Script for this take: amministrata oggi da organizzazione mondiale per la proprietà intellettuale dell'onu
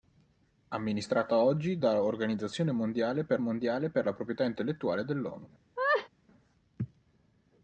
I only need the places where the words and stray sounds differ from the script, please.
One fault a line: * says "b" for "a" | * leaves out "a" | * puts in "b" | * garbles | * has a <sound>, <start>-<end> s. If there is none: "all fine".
* puts in "mondiale per"
* has a laugh, 5.8-6.1 s